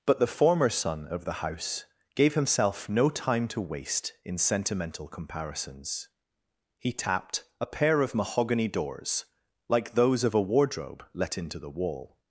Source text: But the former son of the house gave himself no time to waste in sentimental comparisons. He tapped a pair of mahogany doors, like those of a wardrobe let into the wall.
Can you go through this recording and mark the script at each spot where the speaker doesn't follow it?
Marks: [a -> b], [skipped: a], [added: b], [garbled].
But the former son of the house gave himself no time to waste in sentimental comparisons. He tapped a pair of mahogany doors, like those of a wardrobe let into the wall.